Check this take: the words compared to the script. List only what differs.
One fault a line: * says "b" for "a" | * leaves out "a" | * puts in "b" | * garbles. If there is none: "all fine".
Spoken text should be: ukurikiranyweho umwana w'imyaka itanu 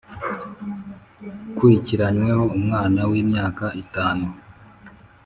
all fine